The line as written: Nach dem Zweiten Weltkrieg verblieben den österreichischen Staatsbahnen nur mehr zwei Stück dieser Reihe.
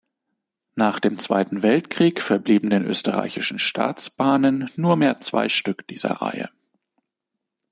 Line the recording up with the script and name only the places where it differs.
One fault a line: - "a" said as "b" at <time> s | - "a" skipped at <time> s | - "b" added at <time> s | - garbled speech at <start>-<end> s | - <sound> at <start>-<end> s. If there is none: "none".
none